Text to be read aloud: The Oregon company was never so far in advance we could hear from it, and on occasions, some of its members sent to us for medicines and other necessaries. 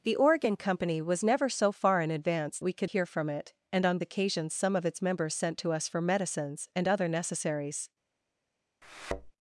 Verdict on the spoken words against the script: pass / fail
pass